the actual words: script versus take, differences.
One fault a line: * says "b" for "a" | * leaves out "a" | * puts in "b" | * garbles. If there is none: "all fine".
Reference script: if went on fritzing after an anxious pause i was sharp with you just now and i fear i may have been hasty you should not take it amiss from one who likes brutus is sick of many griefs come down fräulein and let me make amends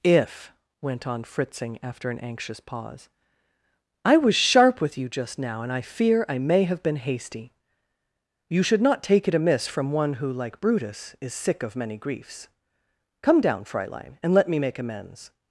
* says "like" for "likes"